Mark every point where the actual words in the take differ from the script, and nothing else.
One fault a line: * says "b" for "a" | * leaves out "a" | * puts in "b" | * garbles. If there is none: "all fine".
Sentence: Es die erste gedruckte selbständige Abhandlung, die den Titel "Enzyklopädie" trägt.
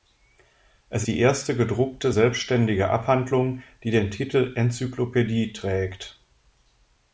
all fine